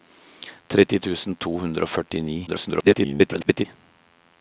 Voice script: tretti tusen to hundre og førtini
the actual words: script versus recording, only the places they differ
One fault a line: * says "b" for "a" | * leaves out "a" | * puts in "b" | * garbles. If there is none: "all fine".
* garbles